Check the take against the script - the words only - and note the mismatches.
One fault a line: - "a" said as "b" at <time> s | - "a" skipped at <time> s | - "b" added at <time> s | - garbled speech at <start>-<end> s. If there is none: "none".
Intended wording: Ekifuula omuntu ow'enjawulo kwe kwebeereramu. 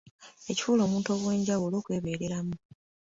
- "kwe" skipped at 1.8 s